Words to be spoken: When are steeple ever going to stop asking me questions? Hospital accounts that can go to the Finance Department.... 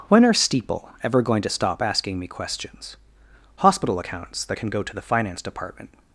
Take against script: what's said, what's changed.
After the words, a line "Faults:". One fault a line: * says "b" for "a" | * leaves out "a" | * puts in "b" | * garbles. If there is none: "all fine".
When are steeple ever going to stop asking me questions? Hospital accounts that can go to the Finance Department....
Faults:
all fine